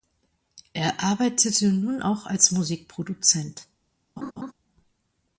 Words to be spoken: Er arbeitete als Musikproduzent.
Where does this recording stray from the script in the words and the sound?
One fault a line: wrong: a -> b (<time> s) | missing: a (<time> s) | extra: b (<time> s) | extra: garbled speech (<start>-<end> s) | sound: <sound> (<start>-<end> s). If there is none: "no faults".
extra: nun auch (1.7 s)
sound: laugh (4.2-4.5 s)